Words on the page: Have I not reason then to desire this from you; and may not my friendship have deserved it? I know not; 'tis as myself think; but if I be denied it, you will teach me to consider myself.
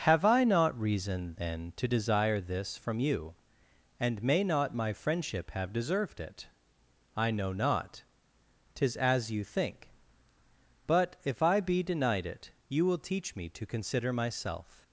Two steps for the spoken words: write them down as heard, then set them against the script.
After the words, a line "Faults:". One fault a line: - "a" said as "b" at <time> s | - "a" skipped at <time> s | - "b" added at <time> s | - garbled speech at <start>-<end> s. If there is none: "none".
Have I not reason then to desire this from you; and may not my friendship have deserved it? I know not; 'tis as you think; but if I be denied it, you will teach me to consider myself.
Faults:
- "myself" said as "you" at 9.3 s